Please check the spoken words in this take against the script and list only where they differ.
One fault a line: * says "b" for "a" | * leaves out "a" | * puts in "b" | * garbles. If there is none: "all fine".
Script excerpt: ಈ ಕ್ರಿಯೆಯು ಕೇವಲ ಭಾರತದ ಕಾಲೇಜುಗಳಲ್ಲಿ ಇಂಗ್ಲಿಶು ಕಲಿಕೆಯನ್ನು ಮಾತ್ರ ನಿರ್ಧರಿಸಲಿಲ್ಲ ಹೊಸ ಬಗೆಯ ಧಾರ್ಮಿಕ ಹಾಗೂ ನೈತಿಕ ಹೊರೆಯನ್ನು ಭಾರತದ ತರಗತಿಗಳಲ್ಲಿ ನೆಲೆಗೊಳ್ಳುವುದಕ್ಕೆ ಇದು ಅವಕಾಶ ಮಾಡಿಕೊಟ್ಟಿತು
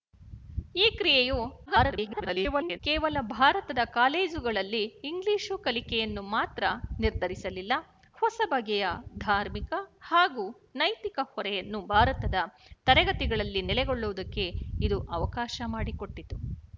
* garbles